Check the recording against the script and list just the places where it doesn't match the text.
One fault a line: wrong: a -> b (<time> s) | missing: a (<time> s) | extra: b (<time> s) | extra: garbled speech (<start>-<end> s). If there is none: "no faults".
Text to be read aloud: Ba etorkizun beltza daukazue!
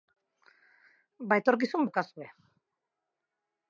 missing: beltza (1.9 s)